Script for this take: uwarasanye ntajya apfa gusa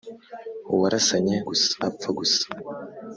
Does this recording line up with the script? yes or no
no